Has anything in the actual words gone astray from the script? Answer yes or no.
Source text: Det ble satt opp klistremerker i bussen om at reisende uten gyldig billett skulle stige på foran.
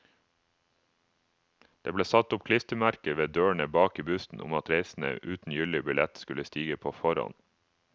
yes